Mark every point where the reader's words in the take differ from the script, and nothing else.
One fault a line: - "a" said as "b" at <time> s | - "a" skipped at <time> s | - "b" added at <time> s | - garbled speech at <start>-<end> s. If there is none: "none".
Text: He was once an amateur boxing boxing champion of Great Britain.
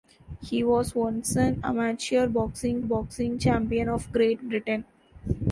none